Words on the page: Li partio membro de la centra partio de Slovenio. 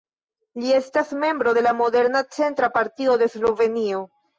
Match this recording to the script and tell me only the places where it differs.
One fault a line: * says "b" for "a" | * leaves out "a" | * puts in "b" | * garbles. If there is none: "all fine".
* says "estas" for "partio"
* puts in "moderna"